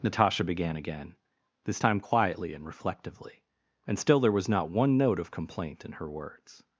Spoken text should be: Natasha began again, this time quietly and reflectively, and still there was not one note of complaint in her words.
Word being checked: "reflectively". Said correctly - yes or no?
yes